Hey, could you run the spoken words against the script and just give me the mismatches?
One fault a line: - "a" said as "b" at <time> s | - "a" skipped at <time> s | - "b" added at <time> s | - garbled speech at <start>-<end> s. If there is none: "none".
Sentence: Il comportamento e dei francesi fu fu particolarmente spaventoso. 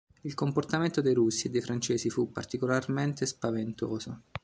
- "dei russi" added at 1.0 s
- "fu" skipped at 2.3 s